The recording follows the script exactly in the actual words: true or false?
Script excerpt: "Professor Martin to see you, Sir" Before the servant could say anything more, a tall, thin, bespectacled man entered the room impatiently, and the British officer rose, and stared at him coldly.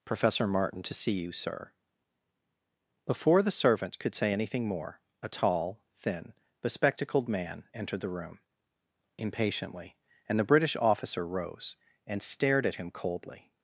true